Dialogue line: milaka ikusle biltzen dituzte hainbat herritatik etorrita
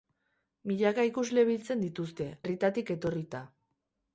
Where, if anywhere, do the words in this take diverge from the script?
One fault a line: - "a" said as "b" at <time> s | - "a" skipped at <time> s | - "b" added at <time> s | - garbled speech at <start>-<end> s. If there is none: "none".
- "hainbat" skipped at 2.3 s